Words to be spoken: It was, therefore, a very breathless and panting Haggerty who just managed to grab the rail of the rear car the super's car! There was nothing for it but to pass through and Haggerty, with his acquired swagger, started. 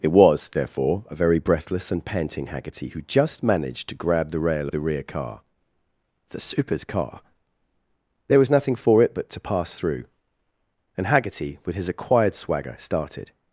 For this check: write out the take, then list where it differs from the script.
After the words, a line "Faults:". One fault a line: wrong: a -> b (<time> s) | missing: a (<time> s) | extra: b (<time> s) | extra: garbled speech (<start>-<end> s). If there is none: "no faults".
It was, therefore, a very breathless and panting Haggerty who just managed to grab the rail of the rear car the super's car! There was nothing for it but to pass through and Haggerty, with his acquired swagger, started.
Faults:
no faults